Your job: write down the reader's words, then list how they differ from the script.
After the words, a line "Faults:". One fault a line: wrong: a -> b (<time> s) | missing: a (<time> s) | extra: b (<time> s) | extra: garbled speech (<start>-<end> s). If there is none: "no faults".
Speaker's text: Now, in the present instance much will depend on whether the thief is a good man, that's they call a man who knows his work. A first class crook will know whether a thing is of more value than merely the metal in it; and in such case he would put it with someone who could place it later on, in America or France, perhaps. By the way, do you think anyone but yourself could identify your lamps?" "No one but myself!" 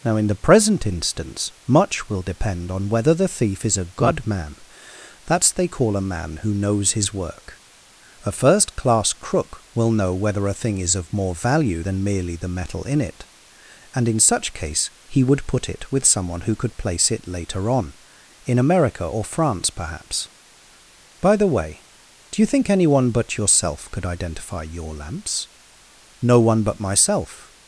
Now, in the present instance much will depend on whether the thief is a good man, that's they call a man who knows his work. A first class crook will know whether a thing is of more value than merely the metal in it; and in such case he would put it with someone who could place it later on, in America or France, perhaps. By the way, do you think anyone but yourself could identify your lamps?" "No one but myself!"
Faults:
no faults